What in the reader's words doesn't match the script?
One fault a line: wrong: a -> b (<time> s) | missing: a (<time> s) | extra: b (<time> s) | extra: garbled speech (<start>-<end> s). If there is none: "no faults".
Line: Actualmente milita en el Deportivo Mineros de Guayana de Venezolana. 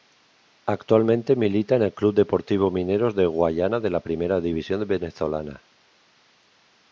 extra: Club (1.9 s)
extra: la Primera División (3.9 s)